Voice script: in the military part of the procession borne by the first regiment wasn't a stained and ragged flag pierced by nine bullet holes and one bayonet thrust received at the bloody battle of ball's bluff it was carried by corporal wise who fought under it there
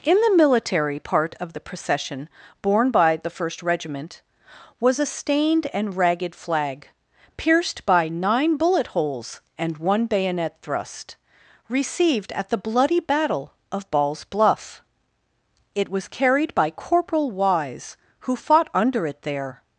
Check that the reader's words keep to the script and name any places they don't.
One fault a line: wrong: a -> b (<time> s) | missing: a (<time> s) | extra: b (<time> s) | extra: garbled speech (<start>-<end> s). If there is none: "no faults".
wrong: wasn't -> was (4.8 s)